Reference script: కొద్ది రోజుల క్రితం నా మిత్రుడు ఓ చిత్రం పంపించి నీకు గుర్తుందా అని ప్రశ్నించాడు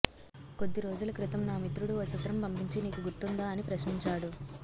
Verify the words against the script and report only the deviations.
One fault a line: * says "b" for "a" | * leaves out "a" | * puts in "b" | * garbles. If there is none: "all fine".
all fine